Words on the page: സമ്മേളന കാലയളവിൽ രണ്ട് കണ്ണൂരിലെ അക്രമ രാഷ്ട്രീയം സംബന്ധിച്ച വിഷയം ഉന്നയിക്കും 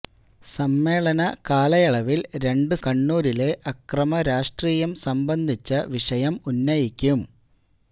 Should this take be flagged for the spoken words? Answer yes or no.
no